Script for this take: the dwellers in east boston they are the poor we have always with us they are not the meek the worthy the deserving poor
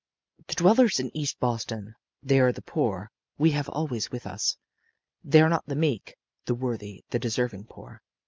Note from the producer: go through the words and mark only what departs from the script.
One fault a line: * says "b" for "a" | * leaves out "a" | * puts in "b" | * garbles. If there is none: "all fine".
all fine